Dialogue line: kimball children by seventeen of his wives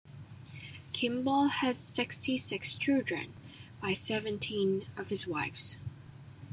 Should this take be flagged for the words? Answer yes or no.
yes